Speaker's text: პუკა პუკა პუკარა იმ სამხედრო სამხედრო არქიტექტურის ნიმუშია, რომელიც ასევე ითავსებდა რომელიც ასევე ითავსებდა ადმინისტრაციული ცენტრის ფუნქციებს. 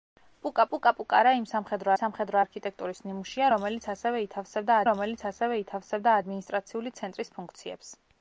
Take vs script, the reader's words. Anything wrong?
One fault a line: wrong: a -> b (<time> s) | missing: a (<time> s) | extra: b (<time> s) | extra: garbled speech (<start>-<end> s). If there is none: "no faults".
no faults